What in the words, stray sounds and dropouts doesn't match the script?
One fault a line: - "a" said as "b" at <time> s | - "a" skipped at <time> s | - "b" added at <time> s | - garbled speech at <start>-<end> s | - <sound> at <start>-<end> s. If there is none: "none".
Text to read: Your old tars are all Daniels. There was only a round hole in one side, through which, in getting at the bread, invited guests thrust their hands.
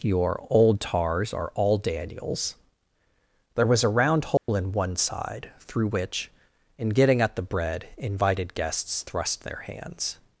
- "only" skipped at 3.8 s
- dropout at 4.4-4.5 s